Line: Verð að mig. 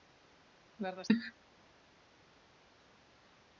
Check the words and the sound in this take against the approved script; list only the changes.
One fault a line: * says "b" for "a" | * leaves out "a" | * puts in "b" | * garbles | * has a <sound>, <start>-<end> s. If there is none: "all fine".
all fine